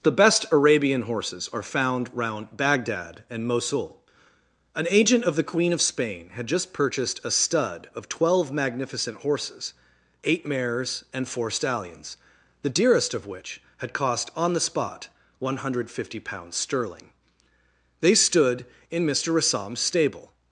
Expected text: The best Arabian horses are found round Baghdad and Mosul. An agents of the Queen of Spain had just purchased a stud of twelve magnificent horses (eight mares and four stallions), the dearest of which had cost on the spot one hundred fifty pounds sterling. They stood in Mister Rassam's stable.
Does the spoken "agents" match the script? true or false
false